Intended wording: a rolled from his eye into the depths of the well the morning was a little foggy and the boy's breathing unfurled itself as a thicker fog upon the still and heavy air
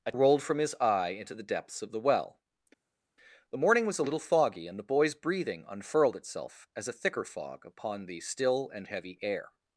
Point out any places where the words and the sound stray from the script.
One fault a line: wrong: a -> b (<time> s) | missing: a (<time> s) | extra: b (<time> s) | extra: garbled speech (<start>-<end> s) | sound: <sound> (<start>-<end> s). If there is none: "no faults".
no faults